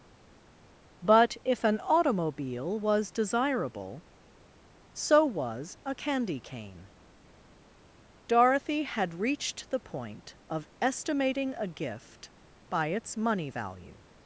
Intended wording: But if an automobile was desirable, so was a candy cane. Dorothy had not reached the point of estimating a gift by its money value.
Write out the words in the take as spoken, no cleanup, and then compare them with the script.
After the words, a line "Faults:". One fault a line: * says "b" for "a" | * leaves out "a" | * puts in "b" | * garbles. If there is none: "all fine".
But if an automobile was desirable, so was a candy cane. Dorothy had reached the point of estimating a gift by its money value.
Faults:
* leaves out "not"